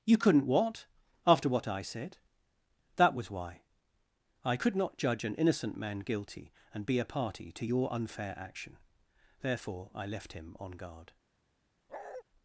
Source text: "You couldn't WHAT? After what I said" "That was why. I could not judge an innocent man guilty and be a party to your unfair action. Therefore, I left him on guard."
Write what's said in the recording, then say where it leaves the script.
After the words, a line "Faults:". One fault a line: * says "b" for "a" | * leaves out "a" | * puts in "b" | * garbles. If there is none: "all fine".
"You couldn't WHAT? After what I said" "That was why. I could not judge an innocent man guilty and be a party to your unfair action. Therefore, I left him on guard."
Faults:
all fine